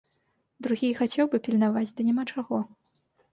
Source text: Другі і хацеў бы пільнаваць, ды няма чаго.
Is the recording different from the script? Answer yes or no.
no